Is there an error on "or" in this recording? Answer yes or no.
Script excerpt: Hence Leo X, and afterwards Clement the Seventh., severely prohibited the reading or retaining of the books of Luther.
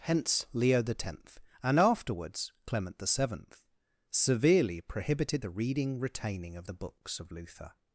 yes